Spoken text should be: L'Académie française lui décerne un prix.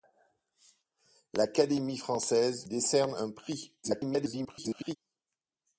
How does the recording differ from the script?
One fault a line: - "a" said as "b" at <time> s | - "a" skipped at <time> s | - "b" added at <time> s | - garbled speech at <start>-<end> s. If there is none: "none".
- "lui" skipped at 2.7 s
- garbled speech at 3.8-5.0 s